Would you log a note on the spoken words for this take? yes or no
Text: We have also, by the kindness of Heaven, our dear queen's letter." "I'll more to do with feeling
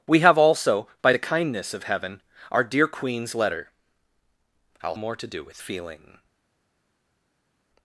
no